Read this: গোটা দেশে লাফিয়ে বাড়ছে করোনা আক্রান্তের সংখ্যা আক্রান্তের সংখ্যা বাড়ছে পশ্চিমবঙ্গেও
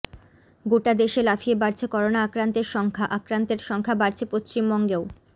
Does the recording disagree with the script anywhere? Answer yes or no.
no